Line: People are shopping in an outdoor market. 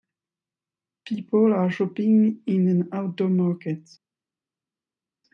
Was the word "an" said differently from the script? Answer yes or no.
no